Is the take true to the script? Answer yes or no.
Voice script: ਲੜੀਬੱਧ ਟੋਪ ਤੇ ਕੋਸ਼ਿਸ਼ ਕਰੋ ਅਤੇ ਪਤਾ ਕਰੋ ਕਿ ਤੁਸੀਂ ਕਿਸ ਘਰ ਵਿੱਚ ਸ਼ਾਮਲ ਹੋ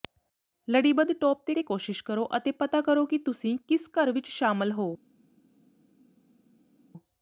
no